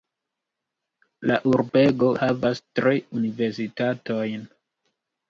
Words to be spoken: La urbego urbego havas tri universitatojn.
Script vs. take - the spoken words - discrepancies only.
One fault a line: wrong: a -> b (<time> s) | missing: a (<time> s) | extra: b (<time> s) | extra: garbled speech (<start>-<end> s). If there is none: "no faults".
missing: urbego (2.1 s)